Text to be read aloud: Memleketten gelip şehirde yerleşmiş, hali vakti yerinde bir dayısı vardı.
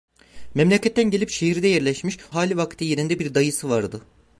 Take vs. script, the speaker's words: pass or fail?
pass